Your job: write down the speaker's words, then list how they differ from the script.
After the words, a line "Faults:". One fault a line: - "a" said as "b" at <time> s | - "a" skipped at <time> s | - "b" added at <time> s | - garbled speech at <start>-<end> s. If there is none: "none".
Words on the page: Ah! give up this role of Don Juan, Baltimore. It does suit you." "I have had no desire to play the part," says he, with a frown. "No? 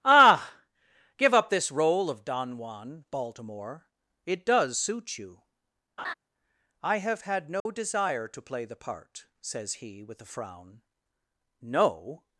Ah! give up this role of Don Juan, Baltimore. It does suit you." "I have had no desire to play the part," says he, with a frown. "No?
Faults:
none